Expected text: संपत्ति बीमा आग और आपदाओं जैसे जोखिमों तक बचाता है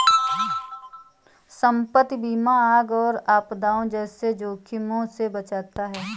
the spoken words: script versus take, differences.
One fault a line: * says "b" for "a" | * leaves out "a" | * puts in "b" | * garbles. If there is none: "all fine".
* says "से" for "तक"